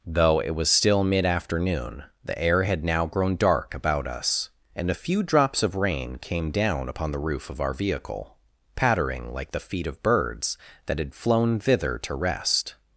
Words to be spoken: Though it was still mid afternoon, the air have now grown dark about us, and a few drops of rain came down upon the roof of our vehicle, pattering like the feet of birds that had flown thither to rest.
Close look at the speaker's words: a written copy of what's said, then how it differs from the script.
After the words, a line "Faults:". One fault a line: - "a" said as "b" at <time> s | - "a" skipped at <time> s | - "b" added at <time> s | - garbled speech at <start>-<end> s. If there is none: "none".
Though it was still mid afternoon, the air had now grown dark about us, and a few drops of rain came down upon the roof of our vehicle, pattering like the feet of birds that had flown thither to rest.
Faults:
- "have" said as "had" at 2.6 s